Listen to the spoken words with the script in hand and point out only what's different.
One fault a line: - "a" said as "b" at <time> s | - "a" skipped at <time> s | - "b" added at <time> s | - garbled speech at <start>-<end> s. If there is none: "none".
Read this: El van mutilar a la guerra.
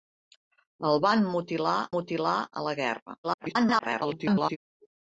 - "mutilar" added at 1.9 s
- garbled speech at 3.2-4.6 s